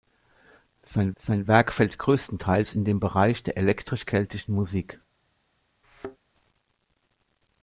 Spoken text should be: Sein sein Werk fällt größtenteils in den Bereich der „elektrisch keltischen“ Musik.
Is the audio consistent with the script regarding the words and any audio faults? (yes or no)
no